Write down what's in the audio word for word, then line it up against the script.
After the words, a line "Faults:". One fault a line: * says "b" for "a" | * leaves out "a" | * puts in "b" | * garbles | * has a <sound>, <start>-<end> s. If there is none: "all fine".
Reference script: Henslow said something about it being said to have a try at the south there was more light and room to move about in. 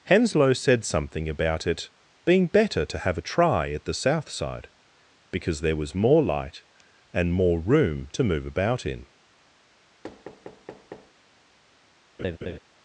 Henslow said something about it being better to have a try at the south side, because there was more light and more room to move about in.
Faults:
* says "better" for "said"
* puts in "side because"
* puts in "more"
* has a thud, 10.0-11.1 s
* has a laugh, 12.2-12.6 s